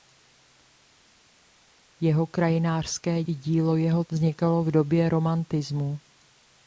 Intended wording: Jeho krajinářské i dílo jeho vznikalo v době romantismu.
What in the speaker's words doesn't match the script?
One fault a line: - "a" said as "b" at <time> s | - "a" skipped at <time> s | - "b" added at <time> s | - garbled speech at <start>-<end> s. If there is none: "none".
none